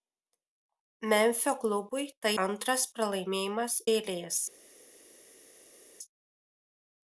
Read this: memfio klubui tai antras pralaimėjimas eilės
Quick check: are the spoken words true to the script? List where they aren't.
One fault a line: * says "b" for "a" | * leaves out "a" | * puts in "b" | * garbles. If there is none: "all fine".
all fine